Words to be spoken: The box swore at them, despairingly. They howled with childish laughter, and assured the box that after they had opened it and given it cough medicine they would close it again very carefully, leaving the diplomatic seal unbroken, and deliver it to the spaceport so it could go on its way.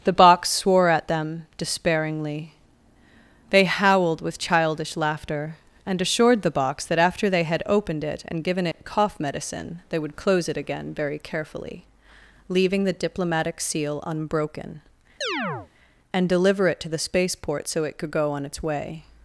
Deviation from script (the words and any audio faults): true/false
true